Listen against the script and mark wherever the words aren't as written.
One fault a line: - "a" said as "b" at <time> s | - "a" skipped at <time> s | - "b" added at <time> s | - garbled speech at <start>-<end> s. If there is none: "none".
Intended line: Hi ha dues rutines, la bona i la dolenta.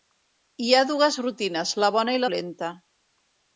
- "la" skipped at 2.2 s